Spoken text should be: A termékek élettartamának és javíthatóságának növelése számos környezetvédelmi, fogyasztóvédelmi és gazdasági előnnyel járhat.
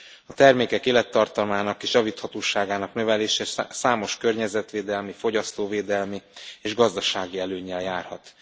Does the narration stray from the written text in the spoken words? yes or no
no